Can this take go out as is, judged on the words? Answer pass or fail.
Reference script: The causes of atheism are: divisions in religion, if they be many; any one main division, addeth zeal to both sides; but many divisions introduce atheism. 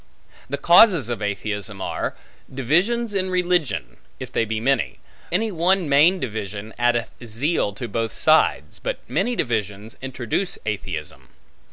pass